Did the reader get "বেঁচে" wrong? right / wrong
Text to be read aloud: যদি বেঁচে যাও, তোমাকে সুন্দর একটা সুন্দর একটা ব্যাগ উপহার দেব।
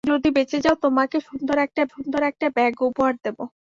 right